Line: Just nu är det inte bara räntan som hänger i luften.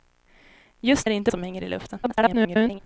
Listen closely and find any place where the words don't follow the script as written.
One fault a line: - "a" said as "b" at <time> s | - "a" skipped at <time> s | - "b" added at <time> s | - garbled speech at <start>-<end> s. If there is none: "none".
- "nu" skipped at 1.1 s
- "bara räntan" skipped at 1.3 s
- garbled speech at 2.0-2.8 s